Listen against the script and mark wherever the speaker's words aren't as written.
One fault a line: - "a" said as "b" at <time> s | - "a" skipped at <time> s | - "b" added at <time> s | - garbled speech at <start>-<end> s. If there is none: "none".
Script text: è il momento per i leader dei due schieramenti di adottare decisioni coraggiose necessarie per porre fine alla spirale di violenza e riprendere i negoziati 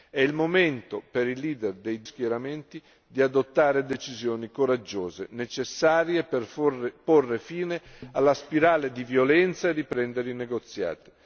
- "due" skipped at 2.0 s